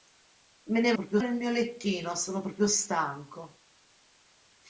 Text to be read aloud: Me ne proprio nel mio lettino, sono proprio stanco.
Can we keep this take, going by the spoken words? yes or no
yes